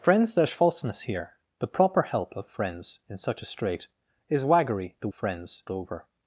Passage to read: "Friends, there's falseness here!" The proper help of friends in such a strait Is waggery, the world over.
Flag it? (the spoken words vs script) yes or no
yes